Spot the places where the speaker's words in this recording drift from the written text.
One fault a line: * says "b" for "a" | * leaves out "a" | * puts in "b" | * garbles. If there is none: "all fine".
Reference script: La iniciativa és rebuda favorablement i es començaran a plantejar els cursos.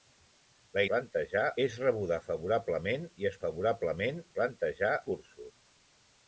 * says "plantejar" for "iniciativa"
* says "favorablement" for "començaran"
* leaves out "els"